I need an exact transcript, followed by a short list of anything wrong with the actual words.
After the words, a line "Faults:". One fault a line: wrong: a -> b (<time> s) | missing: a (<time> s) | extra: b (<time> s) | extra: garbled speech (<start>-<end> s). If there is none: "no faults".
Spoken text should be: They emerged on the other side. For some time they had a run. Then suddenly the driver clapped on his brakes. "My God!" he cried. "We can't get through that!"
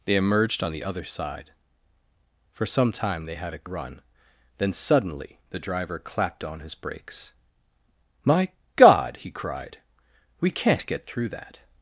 They emerged on the other side. For some time they had a run. Then suddenly the driver clapped on his brakes. "My God!" he cried. "We can't get through that!"
Faults:
no faults